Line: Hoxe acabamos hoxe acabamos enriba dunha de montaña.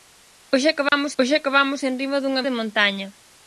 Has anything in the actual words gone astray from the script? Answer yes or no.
no